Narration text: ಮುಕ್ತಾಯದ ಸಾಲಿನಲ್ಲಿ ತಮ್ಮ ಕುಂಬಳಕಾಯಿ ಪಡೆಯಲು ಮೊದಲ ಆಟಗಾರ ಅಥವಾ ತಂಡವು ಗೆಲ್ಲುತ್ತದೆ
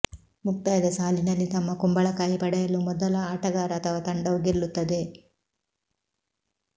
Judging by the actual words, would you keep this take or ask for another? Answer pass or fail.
pass